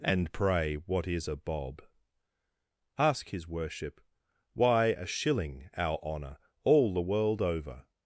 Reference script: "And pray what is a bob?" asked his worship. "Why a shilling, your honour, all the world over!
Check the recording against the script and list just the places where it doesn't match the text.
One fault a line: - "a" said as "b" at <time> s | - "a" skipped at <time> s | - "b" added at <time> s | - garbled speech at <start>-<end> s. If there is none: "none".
- "asked" said as "ask" at 3.0 s
- "your" said as "our" at 5.8 s